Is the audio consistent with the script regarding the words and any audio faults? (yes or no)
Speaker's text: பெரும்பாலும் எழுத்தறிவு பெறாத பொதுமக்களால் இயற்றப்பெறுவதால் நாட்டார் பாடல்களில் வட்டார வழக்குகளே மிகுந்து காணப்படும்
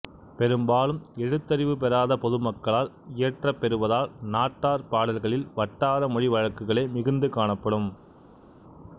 no